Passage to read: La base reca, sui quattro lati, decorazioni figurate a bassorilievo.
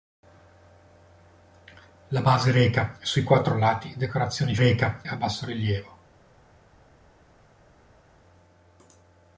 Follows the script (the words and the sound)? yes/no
no